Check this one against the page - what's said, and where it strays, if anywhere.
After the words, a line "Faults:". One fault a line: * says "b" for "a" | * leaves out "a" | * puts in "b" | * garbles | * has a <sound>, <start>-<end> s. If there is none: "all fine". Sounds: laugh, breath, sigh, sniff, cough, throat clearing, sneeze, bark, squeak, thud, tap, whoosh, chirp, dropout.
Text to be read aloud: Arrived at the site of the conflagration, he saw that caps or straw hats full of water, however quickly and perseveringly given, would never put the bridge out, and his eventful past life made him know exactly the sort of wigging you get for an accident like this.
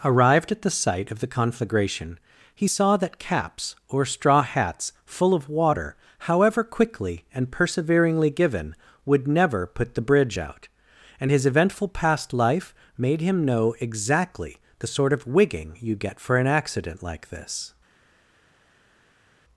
Arrived at the site of the conflagration, he saw that caps or straw hats full of water, however quickly and perseveringly given, would never put the bridge out, and his eventful past life made him know exactly the sort of wigging you get for an accident like this.
Faults:
all fine